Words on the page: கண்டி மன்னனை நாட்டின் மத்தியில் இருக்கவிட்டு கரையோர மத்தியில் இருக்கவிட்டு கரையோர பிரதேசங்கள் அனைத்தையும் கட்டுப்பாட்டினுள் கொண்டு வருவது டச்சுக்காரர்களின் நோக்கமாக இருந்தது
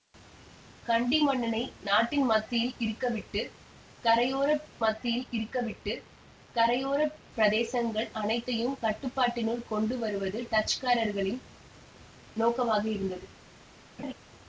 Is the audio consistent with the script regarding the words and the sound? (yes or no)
no